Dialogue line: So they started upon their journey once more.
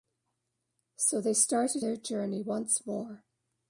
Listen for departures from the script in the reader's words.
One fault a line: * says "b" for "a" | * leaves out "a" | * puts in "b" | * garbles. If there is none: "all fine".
* leaves out "upon"